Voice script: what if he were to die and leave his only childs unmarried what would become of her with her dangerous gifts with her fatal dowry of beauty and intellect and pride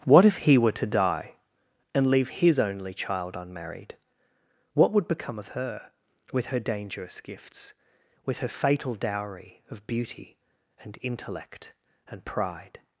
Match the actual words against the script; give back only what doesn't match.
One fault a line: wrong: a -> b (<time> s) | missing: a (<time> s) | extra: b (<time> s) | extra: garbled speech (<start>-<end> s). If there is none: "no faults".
wrong: childs -> child (2.9 s)